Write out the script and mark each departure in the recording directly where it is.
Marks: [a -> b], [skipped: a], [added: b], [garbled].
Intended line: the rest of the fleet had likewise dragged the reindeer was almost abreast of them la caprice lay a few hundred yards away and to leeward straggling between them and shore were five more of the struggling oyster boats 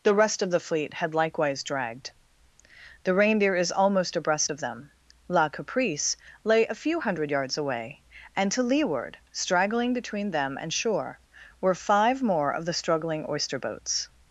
the rest of the fleet had likewise dragged the reindeer [was -> is] almost abreast of them la caprice lay a few hundred yards away and to leeward straggling between them and shore were five more of the struggling oyster boats